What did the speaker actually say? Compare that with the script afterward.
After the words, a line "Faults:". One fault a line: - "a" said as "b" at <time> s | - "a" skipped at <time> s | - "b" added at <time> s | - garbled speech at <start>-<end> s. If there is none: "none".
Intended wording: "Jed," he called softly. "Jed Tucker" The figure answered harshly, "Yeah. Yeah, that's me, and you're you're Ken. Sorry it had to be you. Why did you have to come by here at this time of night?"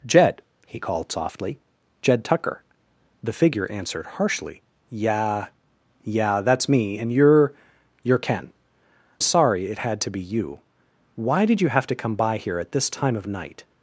"Jed," he called softly. "Jed Tucker" The figure answered harshly, "Yeah. Yeah, that's me, and you're you're Ken. Sorry it had to be you. Why did you have to come by here at this time of night?"
Faults:
none